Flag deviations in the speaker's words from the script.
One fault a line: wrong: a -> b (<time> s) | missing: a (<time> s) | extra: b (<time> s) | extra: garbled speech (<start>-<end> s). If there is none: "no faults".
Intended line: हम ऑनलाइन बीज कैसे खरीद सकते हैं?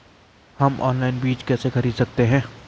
no faults